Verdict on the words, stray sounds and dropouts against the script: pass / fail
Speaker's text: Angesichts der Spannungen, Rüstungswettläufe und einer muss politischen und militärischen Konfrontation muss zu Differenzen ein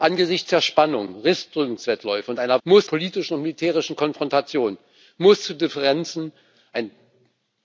pass